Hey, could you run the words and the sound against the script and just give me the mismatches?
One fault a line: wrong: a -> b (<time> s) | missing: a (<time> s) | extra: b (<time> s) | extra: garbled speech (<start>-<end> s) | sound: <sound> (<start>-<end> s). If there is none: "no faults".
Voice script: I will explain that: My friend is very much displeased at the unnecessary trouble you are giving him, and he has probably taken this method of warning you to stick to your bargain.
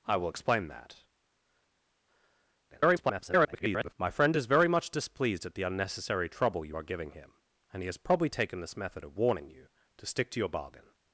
extra: garbled speech (2.7-3.9 s)